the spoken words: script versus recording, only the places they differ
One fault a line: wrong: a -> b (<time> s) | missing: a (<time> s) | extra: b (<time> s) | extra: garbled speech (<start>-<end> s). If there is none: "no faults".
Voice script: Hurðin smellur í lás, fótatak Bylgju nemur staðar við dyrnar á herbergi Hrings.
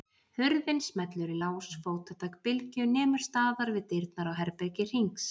no faults